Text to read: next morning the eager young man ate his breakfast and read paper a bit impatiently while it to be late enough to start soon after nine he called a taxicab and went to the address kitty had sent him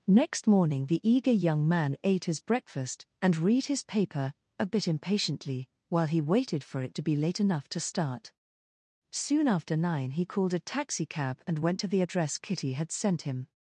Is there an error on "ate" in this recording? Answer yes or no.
no